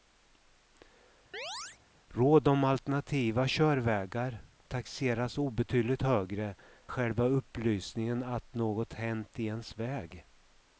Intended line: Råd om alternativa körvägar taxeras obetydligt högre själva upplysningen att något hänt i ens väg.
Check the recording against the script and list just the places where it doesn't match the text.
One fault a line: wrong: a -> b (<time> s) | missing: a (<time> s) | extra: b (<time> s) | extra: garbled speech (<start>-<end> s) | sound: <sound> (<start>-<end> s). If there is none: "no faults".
sound: chirp (1.3-1.8 s)